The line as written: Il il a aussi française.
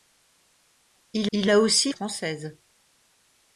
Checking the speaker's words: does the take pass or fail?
pass